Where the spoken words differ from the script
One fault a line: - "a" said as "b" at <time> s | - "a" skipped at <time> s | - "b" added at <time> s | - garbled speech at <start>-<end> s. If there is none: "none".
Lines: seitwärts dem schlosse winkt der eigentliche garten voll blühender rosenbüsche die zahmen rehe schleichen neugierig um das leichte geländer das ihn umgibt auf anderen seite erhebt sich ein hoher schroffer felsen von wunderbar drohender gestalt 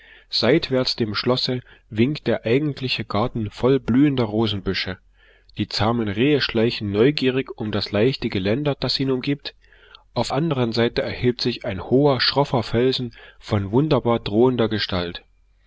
none